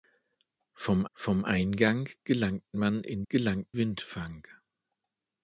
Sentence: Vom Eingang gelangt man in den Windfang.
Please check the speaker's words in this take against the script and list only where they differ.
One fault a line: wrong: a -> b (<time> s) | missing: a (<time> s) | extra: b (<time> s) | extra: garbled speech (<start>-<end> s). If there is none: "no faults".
extra: vom (1.1 s)
wrong: den -> gelangt (3.3 s)